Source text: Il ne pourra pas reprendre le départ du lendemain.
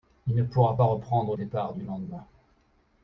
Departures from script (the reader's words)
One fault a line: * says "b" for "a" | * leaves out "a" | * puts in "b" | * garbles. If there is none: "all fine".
* leaves out "le"